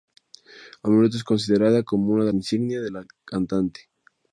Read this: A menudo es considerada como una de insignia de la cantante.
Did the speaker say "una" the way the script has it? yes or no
yes